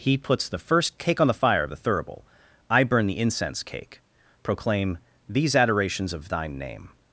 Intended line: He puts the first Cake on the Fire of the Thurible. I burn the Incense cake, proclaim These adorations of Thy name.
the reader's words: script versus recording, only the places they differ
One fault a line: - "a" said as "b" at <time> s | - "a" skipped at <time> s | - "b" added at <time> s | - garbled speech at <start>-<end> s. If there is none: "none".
- "Thy" said as "Thine" at 6.3 s